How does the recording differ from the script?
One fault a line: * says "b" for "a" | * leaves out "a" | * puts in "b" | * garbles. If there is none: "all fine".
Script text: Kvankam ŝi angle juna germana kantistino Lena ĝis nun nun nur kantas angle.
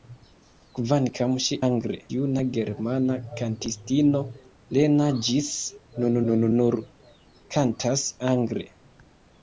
all fine